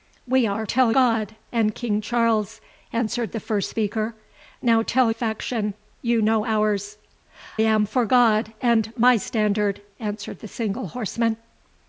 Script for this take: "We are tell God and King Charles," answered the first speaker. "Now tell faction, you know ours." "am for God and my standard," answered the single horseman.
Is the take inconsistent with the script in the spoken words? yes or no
no